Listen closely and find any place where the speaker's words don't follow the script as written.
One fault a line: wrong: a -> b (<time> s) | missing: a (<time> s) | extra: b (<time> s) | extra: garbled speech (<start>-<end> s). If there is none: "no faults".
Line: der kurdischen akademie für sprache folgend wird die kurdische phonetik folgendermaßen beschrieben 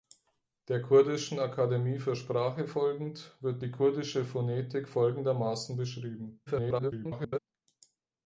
extra: garbled speech (6.5-7.4 s)